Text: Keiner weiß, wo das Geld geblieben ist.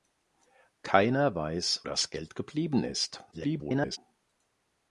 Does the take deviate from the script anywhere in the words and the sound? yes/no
yes